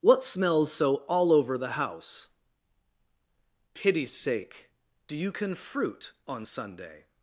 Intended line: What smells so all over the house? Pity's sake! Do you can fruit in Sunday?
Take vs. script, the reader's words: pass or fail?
fail